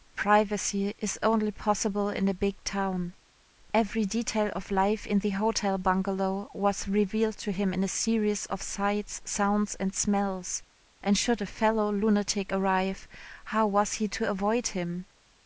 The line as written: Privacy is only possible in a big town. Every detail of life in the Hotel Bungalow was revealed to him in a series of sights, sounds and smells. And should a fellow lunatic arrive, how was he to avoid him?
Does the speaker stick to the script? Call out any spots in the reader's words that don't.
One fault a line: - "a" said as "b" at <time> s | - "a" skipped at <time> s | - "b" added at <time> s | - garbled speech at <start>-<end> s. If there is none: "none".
none